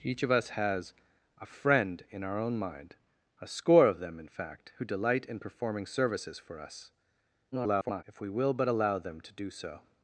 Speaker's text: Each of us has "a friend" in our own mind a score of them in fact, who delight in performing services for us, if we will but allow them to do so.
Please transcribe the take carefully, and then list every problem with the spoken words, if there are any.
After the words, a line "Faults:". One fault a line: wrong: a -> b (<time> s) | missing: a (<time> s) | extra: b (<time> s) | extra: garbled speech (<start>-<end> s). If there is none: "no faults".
Each of us has "a friend" in our own mind a score of them in fact, who delight in performing services for us, [garbled] if we will but allow them to do so.
Faults:
extra: garbled speech (7.5-8.0 s)